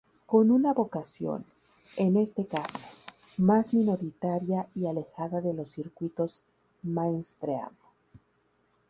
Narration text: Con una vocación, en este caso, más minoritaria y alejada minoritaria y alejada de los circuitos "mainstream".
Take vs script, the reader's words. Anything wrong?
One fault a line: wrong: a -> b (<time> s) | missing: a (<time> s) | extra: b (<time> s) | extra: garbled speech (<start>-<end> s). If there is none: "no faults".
missing: minoritaria y alejada (5.4 s)